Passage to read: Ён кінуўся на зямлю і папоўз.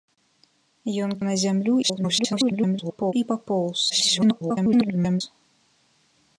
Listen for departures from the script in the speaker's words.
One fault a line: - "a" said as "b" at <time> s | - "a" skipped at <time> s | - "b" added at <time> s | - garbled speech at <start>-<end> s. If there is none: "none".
- "кінуўся" skipped at 1.1 s
- garbled speech at 1.8-3.1 s
- garbled speech at 3.9-5.2 s